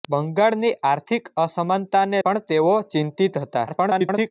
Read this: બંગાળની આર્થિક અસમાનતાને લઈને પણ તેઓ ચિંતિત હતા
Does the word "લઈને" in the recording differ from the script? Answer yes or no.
yes